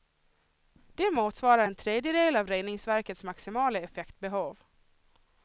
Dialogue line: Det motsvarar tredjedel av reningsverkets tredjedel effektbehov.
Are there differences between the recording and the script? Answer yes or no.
yes